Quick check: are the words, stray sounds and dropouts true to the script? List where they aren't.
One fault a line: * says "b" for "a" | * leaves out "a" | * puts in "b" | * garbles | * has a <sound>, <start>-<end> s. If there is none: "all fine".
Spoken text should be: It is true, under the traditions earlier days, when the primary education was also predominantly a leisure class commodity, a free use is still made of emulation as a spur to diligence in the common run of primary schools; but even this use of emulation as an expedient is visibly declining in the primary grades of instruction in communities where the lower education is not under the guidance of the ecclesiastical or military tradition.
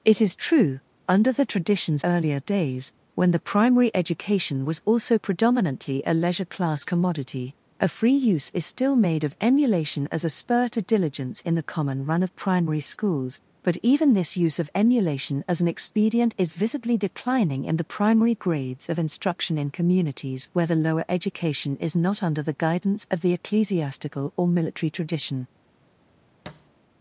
* has a thud, 26.5-26.7 s